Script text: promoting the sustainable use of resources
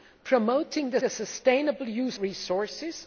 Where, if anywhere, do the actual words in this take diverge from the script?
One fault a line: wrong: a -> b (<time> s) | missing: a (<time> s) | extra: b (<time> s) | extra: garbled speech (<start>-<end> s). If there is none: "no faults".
extra: the (1.0 s)
missing: of (2.2 s)